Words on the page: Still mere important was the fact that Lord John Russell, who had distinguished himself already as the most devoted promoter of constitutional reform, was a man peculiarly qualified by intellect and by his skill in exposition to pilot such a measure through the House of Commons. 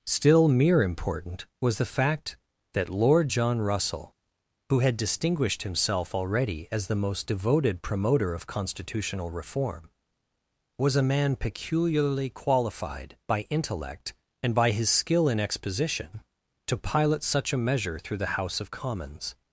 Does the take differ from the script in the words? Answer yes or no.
no